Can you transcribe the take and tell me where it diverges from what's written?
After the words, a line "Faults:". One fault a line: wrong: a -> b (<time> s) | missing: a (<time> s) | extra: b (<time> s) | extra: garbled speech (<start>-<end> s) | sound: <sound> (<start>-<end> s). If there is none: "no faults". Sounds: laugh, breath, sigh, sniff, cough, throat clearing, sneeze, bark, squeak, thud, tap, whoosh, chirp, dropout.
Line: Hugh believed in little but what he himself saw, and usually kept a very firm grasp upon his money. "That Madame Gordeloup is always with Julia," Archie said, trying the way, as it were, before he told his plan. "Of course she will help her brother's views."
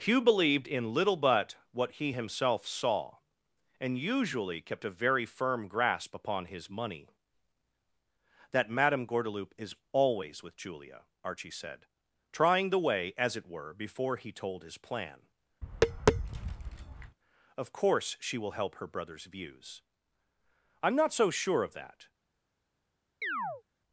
Hugh believed in little but what he himself saw, and usually kept a very firm grasp upon his money. "That Madame Gordeloup is always with Julia," Archie said, trying the way, as it were, before he told his plan. "Of course she will help her brother's views." "I'm not so sure of that
Faults:
sound: tap (15.6-17.2 s)
extra: I'm not so sure of that (20.8 s)
sound: chirp (23.2-23.6 s)